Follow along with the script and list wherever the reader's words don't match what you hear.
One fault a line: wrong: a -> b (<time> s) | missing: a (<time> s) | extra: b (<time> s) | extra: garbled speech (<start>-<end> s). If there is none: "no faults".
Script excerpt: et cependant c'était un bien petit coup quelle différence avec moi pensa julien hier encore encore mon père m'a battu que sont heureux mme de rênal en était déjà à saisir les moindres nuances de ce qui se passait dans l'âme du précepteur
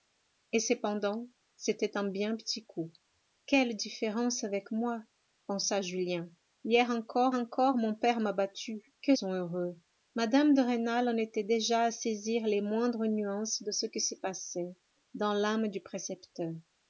no faults